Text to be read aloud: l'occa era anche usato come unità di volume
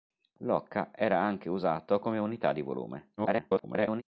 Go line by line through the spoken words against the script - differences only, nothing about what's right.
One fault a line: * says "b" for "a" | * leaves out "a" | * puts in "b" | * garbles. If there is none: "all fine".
* garbles